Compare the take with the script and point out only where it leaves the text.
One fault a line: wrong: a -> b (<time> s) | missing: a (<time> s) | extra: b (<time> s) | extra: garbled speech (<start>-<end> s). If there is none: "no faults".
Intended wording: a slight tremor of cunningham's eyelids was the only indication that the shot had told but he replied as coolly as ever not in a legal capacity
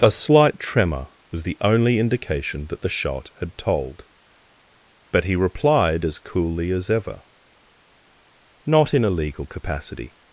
missing: of cunningham's eyelids (1.1 s)